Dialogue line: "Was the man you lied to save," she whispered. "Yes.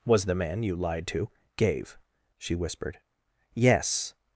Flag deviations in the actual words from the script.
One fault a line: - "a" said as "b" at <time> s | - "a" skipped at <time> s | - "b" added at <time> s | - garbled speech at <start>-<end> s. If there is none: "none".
- "save" said as "gave" at 1.6 s